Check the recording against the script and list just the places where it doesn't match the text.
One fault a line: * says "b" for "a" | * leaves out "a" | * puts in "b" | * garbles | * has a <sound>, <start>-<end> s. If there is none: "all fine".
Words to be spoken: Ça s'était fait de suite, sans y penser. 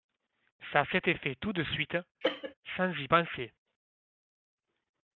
* puts in "tout"
* has a cough, 2.2-2.5 s